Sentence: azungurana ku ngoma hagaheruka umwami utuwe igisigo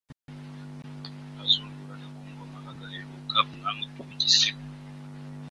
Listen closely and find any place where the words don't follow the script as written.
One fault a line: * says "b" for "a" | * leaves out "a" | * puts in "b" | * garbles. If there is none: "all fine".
all fine